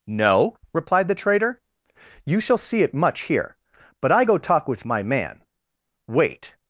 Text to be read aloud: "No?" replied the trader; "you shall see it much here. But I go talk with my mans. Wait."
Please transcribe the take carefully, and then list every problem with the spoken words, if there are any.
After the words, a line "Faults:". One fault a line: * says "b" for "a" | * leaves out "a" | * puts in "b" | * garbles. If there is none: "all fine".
"No?" replied the trader; "you shall see it much here. But I go talk with my man. Wait."
Faults:
* says "man" for "mans"